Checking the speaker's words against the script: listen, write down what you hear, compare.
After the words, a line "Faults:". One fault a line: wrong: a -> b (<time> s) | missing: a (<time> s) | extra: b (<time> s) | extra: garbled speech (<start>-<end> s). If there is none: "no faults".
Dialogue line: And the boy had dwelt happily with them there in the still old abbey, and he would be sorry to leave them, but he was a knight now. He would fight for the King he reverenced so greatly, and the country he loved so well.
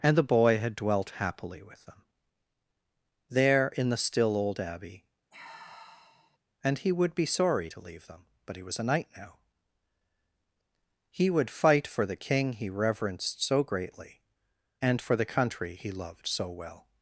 And the boy had dwelt happily with them there in the still old abbey, and he would be sorry to leave them, but he was a knight now. He would fight for the King he reverenced so greatly, and for the country he loved so well.
Faults:
extra: for (15.0 s)